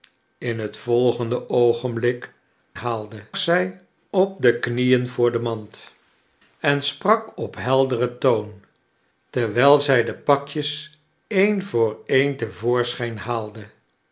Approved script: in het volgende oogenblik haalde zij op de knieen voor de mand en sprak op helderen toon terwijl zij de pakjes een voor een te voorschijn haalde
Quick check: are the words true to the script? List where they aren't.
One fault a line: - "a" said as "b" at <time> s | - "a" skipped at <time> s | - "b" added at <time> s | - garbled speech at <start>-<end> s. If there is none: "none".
none